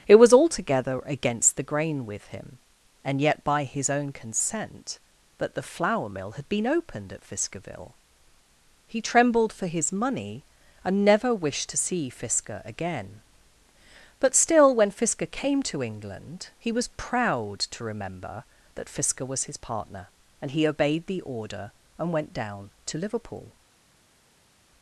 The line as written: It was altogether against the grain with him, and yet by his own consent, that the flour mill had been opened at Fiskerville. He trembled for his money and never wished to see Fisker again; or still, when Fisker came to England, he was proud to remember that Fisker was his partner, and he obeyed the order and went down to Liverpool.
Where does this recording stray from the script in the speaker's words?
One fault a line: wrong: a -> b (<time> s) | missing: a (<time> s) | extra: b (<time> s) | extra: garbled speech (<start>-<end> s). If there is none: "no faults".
wrong: or -> but (14.2 s)